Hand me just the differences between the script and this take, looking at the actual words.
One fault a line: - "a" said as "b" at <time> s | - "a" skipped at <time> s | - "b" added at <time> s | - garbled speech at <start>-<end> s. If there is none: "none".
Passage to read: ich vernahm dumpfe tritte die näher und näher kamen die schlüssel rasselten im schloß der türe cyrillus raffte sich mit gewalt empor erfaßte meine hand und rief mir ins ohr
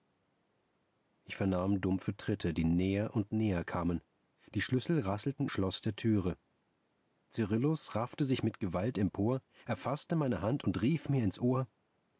- "im" skipped at 5.5 s